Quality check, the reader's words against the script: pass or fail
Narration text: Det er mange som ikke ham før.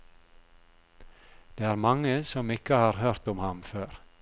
fail